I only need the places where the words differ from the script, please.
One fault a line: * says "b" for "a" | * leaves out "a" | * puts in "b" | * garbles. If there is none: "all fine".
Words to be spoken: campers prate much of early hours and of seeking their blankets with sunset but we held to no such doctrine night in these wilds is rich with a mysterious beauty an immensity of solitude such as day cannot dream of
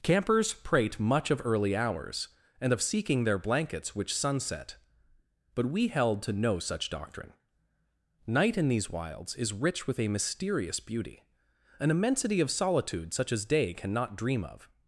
* says "which" for "with"